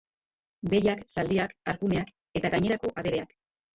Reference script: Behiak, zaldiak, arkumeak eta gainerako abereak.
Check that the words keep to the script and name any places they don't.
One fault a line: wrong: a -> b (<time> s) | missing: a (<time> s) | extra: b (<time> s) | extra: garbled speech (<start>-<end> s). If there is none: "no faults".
no faults